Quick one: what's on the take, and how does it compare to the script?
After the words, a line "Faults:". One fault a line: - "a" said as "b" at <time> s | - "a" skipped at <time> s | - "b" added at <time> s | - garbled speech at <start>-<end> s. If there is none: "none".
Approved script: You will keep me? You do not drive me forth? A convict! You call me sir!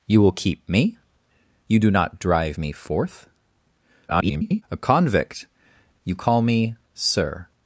You will keep me? You do not drive me forth? [garbled] A convict! You call me sir!
Faults:
- garbled speech at 4.1-4.6 s